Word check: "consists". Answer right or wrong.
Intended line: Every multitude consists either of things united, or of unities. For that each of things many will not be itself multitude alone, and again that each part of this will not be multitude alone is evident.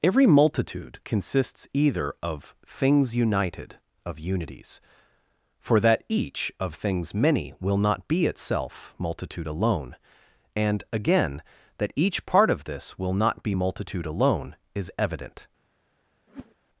right